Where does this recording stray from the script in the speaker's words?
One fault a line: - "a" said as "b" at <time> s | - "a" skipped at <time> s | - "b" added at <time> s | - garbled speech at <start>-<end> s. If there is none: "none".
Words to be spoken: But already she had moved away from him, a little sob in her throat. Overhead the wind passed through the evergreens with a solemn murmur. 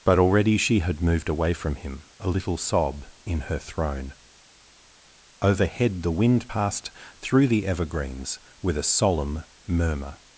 - "throat" said as "throne" at 3.6 s